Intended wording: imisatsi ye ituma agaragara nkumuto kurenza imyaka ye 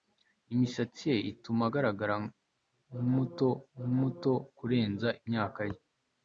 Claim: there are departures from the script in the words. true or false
true